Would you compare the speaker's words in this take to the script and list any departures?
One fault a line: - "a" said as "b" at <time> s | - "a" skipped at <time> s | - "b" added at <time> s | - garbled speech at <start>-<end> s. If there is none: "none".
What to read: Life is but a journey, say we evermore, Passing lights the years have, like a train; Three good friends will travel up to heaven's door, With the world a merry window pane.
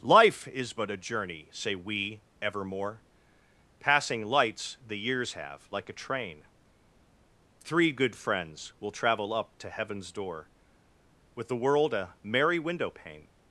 none